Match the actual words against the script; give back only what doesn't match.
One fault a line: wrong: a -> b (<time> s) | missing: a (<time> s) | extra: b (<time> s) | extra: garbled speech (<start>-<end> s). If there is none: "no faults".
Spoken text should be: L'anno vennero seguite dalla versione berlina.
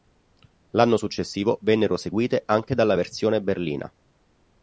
extra: successivo (0.9 s)
extra: anche (2.5 s)